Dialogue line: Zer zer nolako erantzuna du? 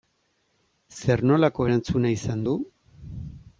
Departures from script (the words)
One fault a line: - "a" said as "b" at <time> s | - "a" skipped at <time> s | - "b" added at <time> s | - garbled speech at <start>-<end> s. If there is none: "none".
- "zer" skipped at 1.2 s
- "izan" added at 2.2 s